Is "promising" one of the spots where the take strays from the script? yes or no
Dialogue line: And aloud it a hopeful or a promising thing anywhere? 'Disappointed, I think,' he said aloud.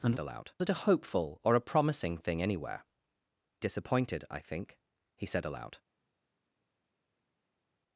no